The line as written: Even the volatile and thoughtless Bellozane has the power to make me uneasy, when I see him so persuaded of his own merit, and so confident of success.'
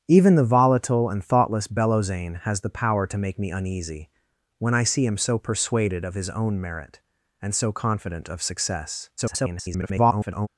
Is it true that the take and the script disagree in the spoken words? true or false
true